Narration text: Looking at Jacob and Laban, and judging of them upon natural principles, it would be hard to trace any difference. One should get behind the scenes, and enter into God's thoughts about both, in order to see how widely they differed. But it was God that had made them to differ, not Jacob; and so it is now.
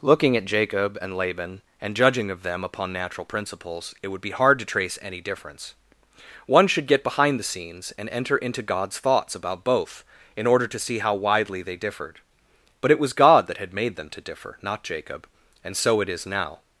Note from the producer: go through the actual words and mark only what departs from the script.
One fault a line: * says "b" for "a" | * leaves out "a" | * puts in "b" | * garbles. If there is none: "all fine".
all fine